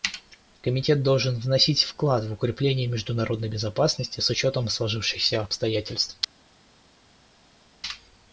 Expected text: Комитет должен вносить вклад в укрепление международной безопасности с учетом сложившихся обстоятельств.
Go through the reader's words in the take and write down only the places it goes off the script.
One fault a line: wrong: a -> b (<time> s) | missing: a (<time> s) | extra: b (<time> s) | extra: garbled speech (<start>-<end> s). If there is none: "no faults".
no faults